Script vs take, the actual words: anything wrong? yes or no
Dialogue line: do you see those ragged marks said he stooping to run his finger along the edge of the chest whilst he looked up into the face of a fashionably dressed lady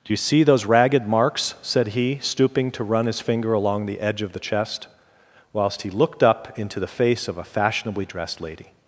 no